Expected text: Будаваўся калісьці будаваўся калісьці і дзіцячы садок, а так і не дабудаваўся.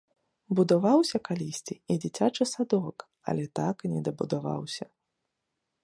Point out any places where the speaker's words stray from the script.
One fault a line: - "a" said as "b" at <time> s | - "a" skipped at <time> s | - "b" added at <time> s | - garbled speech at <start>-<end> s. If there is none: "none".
- "будаваўся калісьці" skipped at 1.8 s
- "а" said as "але" at 3.3 s